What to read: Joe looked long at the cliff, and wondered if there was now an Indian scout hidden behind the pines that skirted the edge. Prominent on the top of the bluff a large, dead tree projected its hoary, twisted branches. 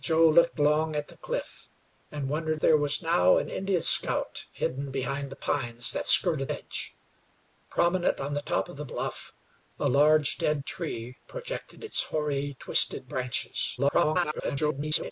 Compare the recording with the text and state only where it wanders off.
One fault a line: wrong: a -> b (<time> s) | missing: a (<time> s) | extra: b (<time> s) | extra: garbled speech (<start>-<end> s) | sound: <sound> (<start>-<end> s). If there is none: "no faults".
missing: if (2.6 s)
missing: the (6.5 s)
extra: garbled speech (13.8-15.1 s)